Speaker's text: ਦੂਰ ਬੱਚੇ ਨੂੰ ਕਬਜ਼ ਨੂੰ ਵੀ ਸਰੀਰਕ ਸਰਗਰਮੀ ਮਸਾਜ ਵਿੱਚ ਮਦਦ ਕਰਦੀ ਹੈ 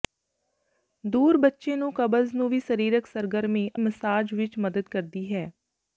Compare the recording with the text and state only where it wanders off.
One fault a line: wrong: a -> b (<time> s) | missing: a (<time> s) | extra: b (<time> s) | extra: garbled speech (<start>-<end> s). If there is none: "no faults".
no faults